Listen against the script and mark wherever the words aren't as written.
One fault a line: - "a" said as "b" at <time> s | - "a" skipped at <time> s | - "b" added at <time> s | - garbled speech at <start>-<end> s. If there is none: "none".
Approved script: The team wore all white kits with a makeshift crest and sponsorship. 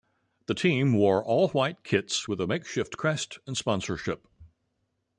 none